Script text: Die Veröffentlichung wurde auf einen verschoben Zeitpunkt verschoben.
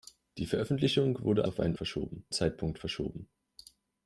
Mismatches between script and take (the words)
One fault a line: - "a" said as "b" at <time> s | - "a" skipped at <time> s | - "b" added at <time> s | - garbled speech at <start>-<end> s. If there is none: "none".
none